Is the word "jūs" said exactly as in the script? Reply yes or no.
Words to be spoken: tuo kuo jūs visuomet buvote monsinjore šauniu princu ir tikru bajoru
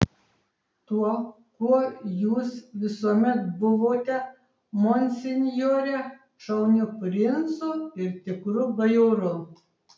yes